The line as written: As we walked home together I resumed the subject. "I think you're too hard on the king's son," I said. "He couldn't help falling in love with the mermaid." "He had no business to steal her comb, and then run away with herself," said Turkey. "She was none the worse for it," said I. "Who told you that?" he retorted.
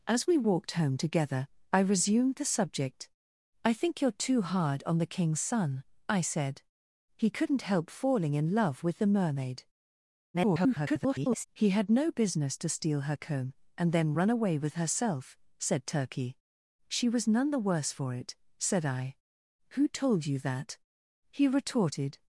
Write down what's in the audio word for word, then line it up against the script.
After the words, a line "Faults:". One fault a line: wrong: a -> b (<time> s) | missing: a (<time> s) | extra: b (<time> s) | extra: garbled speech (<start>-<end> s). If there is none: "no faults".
As we walked home together I resumed the subject. "I think you're too hard on the king's son," I said. "He couldn't help falling in love with the mermaid." [garbled] "He had no business to steal her comb, and then run away with herself," said Turkey. "She was none the worse for it," said I. "Who told you that?" he retorted.
Faults:
extra: garbled speech (10.3-11.4 s)